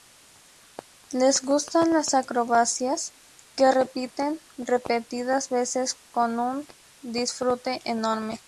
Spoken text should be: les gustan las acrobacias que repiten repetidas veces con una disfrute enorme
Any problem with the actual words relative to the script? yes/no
yes